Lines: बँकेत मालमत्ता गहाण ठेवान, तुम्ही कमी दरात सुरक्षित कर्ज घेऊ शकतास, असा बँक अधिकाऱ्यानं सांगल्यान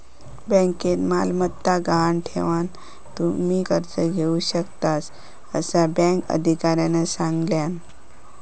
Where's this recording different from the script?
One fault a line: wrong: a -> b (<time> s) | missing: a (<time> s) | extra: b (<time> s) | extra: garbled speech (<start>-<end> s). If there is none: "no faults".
missing: कमी दरात सुरक्षित (3.6 s)